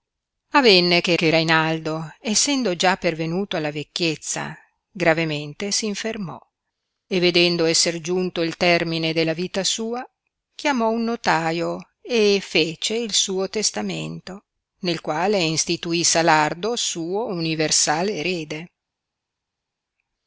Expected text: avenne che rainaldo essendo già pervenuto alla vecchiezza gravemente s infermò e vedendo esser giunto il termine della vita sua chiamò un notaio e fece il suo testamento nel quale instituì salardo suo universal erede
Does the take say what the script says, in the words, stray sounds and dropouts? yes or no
no